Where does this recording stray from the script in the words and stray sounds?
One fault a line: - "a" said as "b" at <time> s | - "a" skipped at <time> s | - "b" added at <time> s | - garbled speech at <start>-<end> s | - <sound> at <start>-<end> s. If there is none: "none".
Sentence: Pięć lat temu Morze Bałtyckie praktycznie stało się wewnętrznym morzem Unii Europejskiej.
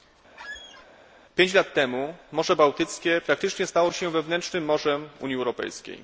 - squeak at 0.3-0.9 s